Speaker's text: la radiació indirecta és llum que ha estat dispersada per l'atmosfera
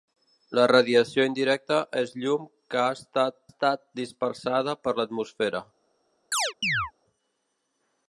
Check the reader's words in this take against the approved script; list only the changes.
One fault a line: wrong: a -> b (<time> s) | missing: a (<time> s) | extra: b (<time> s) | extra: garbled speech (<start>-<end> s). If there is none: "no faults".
extra: estat (3.5 s)